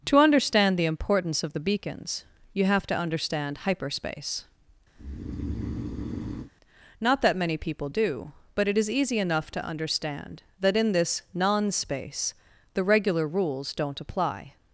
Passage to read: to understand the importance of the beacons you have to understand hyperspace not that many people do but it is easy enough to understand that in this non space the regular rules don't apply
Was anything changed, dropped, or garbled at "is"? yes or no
no